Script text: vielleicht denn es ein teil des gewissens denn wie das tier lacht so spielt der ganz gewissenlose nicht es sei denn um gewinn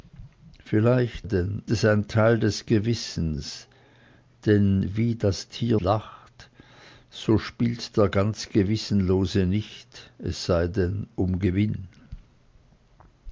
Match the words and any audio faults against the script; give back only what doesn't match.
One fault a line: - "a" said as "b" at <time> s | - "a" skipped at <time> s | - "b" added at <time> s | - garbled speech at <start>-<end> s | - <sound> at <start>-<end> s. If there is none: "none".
none